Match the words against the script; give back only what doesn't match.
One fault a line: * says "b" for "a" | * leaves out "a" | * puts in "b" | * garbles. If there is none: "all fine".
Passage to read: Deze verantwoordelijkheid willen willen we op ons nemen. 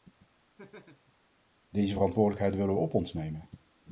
* leaves out "willen"